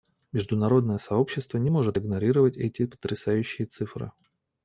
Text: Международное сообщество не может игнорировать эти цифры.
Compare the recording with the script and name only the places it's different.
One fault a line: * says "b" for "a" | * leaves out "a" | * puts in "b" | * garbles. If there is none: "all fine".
* puts in "потрясающие"